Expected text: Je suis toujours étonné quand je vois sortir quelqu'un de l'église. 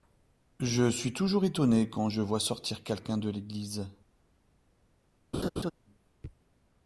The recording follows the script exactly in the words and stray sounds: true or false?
false